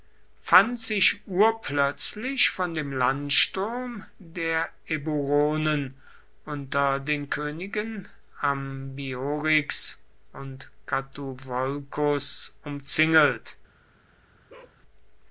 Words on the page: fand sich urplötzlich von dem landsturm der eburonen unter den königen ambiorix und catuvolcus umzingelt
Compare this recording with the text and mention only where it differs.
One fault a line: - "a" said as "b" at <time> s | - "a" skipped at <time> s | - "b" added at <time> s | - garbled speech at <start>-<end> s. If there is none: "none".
none